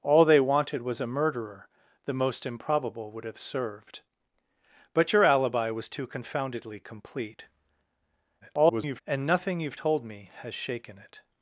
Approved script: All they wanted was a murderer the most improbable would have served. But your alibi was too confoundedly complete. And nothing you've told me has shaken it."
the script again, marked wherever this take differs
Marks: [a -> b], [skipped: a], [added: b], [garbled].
All they wanted was a murderer the most improbable would have served. But your alibi was too confoundedly complete. [garbled] And nothing you've told me has shaken it."